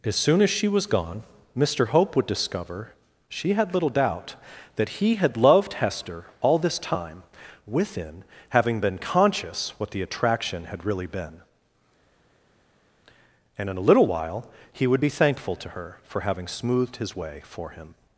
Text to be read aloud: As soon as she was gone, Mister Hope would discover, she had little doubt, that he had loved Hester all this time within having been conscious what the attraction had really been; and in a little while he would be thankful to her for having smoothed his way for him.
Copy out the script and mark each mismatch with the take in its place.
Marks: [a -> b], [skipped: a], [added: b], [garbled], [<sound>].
As soon as she was gone, Mister Hope would discover, she had little doubt, that he had loved Hester all this time within having been conscious what the attraction had really been; and in a little while he would be thankful to her for having smoothed his way for him.